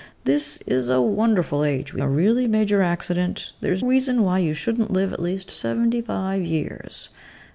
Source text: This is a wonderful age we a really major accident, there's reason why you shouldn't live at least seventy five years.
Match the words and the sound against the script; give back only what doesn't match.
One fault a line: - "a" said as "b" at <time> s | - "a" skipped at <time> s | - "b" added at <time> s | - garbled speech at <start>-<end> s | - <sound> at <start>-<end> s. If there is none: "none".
none